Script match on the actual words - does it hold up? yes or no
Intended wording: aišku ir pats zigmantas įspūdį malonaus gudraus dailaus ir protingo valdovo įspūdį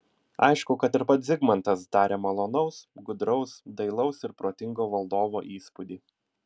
no